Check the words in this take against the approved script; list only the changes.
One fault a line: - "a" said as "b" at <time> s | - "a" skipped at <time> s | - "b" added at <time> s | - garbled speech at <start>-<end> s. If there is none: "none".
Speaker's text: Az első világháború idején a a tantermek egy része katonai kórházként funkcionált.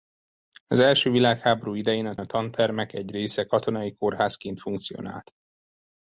none